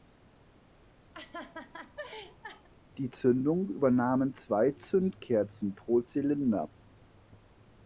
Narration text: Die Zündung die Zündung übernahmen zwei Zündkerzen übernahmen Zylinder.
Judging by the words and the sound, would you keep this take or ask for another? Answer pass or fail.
fail